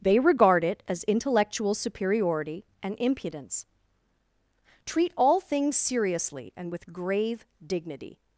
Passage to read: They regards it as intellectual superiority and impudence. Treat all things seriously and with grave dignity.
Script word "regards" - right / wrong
wrong